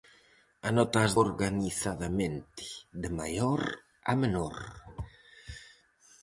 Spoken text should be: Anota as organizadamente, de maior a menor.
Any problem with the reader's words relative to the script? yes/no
no